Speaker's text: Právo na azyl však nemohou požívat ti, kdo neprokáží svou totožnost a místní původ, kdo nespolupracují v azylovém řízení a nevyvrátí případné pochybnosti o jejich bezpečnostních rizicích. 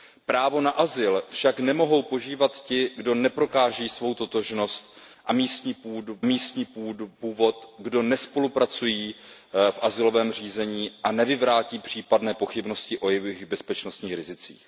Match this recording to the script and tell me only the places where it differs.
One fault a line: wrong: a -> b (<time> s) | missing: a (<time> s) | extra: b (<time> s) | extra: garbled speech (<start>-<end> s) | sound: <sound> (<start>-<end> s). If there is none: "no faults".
extra: místní (6.2 s)